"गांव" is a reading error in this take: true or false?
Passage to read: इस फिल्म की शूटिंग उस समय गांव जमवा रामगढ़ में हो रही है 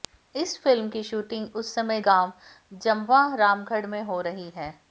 false